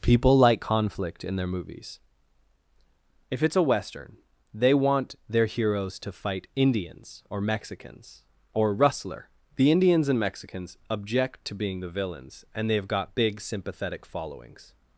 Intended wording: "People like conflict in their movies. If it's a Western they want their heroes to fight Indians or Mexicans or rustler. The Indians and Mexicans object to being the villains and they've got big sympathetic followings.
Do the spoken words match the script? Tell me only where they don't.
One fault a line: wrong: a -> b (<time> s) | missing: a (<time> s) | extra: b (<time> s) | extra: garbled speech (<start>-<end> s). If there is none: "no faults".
no faults